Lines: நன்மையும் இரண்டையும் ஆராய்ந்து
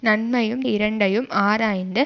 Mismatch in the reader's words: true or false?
false